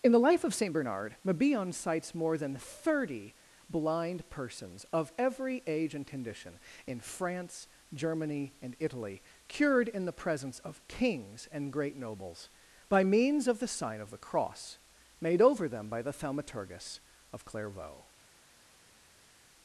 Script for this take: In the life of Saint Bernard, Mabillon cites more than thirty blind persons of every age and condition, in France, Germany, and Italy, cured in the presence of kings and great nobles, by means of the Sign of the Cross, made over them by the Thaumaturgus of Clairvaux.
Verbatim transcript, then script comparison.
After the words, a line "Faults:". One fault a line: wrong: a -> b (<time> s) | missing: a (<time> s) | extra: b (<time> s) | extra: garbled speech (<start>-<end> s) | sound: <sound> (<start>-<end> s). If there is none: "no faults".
In the life of Saint Bernard, Mabillon cites more than thirty blind persons of every age and condition, in France, Germany, and Italy, cured in the presence of kings and great nobles, by means of the Sign of the Cross, made over them by the Thaumaturgus of Clairvaux.
Faults:
no faults